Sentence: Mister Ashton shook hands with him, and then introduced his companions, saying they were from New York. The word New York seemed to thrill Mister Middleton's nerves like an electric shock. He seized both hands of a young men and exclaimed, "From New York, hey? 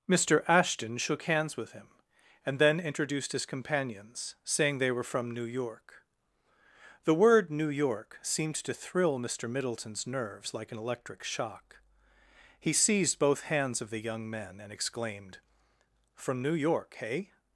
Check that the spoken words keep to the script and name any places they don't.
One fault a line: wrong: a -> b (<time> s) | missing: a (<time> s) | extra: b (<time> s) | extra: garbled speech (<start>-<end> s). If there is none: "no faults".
wrong: a -> the (13.9 s)